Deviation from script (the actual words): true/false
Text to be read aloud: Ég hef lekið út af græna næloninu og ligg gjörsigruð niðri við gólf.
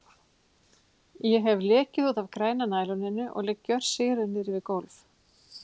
false